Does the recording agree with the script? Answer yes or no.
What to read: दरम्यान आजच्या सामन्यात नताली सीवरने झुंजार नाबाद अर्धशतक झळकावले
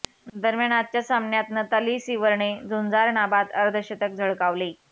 yes